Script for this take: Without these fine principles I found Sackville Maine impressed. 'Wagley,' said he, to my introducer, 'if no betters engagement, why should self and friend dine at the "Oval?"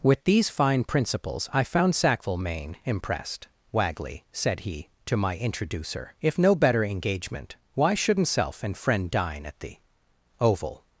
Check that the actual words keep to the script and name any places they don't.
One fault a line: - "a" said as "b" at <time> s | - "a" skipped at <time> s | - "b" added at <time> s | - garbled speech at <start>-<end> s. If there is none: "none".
- "Without" said as "With" at 0.0 s
- "betters" said as "better" at 6.5 s
- "should" said as "shouldn't" at 7.9 s